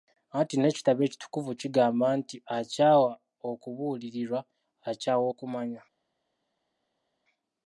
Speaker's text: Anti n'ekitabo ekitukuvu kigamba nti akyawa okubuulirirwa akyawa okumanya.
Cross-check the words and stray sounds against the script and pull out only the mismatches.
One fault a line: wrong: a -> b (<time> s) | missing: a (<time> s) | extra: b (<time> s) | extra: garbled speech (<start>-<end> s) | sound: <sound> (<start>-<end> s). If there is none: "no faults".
no faults